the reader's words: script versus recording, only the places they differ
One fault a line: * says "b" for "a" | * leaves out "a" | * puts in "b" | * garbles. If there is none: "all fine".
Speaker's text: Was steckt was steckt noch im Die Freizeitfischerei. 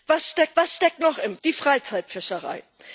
all fine